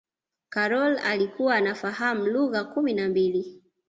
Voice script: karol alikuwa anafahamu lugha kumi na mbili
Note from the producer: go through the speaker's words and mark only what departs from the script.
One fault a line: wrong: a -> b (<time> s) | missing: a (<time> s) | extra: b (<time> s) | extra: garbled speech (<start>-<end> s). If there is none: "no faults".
no faults